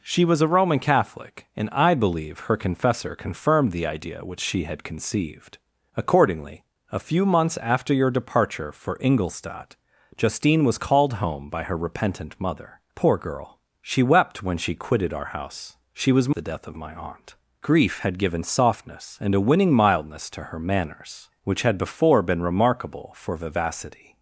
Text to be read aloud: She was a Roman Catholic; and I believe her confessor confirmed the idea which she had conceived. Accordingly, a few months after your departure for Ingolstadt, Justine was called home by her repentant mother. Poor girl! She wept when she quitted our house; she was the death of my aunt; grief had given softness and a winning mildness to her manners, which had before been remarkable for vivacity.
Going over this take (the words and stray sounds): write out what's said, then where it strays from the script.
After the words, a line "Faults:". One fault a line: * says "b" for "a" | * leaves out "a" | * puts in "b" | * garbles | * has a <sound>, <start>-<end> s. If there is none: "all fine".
She was a Roman Catholic; and I believe her confessor confirmed the idea which she had conceived. Accordingly, a few months after your departure for Ingolstadt, Justine was called home by her repentant mother. Poor girl! She wept when she quitted our house; she was the death of my aunt; grief had given softness and a winning mildness to her manners, which had before been remarkable for vivacity.
Faults:
all fine